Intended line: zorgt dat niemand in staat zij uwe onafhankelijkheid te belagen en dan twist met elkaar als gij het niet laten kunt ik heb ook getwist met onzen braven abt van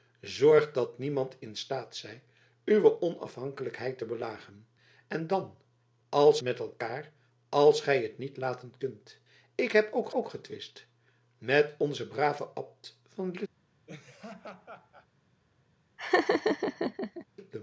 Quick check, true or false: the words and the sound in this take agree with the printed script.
false